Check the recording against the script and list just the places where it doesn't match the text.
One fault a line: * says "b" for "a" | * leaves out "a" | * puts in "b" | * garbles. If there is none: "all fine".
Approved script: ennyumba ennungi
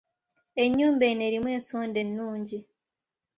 * puts in "eno erimu ensonda"